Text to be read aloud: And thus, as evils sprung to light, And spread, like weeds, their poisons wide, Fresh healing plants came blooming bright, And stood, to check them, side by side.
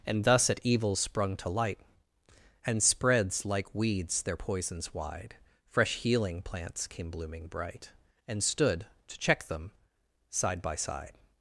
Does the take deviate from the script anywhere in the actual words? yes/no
yes